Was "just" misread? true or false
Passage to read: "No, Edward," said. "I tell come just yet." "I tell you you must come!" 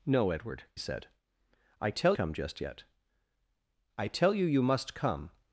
false